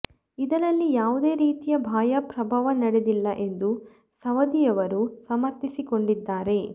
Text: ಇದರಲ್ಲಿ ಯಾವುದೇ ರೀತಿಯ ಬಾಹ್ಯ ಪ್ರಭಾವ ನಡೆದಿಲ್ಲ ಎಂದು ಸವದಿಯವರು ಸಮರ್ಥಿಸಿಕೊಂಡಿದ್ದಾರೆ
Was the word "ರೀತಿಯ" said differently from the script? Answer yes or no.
no